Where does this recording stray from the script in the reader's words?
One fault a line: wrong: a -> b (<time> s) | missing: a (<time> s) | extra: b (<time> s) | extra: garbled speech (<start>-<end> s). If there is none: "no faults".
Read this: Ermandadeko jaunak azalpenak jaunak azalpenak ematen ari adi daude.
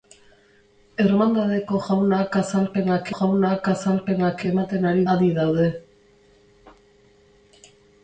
no faults